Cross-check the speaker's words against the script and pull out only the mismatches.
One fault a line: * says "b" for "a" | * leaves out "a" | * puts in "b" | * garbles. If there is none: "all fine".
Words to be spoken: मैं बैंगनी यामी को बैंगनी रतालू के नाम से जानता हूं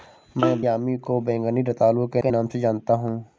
* leaves out "बैंगनी"
* puts in "के"